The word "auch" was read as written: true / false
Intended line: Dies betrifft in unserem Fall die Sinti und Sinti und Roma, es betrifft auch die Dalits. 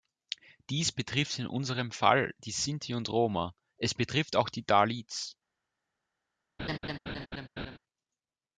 true